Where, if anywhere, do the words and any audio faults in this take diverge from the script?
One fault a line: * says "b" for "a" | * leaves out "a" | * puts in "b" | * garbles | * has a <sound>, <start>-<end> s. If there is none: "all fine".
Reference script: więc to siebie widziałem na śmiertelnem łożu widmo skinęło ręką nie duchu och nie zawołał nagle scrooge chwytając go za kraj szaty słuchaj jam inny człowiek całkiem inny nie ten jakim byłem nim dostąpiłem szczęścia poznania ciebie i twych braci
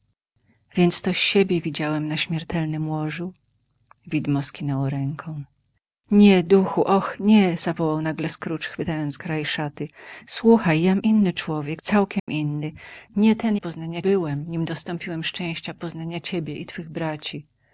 * leaves out "go za"
* has a dropout, 12.2-12.3 s
* says "poznania" for "jakim"